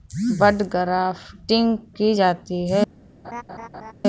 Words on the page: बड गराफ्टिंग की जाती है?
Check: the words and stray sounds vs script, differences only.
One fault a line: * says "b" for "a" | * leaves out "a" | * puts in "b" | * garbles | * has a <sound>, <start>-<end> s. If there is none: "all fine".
* has a laugh, 3.2-3.9 s